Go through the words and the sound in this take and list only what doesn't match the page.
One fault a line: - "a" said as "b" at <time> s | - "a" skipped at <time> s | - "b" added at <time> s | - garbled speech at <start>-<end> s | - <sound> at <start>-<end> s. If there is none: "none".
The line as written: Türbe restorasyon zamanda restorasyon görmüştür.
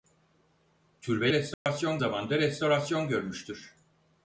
- dropout at 1.5-1.7 s